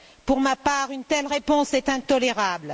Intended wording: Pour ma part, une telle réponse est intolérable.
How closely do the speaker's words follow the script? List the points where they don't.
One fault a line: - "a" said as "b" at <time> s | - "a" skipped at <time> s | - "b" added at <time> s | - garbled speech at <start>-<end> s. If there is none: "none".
none